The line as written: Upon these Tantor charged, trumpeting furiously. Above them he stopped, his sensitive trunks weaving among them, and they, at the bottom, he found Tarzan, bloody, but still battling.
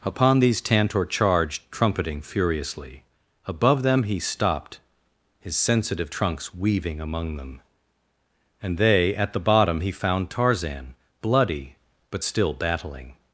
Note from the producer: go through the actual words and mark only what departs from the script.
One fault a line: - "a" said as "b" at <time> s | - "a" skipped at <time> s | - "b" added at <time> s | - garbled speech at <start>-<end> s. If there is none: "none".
none